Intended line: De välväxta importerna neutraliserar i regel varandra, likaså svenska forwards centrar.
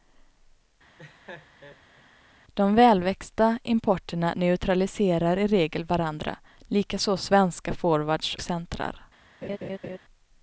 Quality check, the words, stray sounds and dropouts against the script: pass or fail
fail